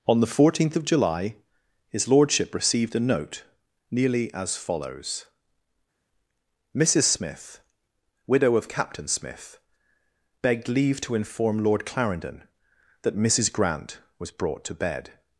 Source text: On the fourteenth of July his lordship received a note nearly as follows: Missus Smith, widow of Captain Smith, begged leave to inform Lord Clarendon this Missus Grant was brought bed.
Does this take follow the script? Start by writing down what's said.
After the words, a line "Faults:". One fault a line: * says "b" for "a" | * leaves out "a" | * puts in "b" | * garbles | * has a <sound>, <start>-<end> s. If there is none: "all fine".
On the fourteenth of July his lordship received a note nearly as follows: Missus Smith, widow of Captain Smith, begged leave to inform Lord Clarendon that Missus Grant was brought to bed.
Faults:
* says "that" for "this"
* puts in "to"